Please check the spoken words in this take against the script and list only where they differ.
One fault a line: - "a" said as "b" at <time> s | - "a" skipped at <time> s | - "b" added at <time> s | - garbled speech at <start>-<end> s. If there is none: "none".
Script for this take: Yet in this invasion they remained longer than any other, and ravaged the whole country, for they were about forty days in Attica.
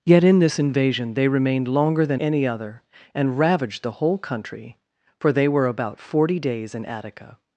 none